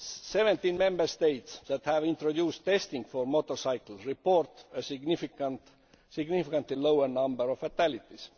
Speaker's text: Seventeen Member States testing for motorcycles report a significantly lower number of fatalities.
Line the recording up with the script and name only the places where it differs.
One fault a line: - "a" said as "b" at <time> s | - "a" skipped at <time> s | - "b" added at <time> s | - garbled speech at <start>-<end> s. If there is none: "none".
- "that have introduced" added at 1.7 s